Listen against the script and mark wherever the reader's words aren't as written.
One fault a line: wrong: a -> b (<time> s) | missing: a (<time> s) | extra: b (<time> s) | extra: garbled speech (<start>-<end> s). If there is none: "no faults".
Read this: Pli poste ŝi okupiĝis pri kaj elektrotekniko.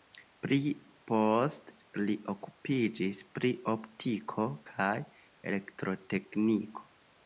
wrong: ŝi -> li (2.1 s)
extra: optiko (3.8 s)